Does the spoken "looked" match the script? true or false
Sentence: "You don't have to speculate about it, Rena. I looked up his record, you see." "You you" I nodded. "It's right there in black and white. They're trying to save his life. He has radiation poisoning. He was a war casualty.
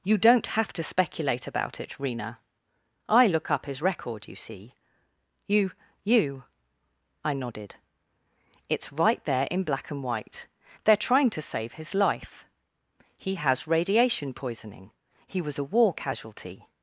false